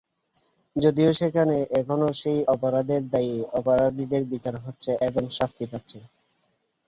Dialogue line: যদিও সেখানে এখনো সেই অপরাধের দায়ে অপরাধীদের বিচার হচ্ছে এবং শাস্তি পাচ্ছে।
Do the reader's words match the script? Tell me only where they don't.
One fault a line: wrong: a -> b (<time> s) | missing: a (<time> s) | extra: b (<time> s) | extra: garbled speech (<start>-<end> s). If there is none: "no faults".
no faults